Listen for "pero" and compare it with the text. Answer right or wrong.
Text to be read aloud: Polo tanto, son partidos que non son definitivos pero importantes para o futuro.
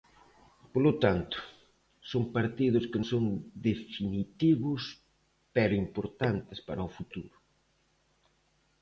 right